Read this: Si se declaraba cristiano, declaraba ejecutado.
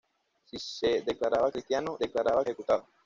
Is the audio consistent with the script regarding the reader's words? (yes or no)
yes